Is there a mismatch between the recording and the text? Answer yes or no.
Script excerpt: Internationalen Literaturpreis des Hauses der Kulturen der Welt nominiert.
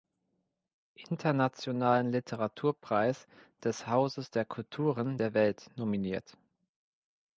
no